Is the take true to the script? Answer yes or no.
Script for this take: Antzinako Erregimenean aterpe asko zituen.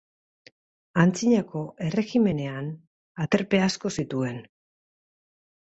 yes